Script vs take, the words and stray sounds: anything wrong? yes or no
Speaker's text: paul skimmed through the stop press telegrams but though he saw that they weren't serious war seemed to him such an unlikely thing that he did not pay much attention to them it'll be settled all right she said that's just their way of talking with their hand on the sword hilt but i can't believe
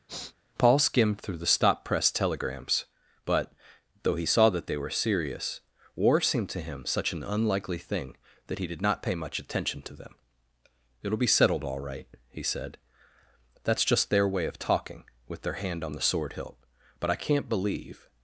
yes